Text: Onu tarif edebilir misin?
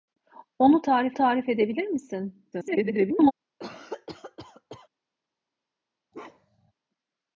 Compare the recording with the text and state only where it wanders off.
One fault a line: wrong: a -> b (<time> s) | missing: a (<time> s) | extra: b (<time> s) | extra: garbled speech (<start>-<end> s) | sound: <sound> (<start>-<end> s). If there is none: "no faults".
extra: tarif (1.1 s)
extra: garbled speech (2.5-3.3 s)
sound: cough (3.6-4.9 s)
sound: bark (6.1-6.7 s)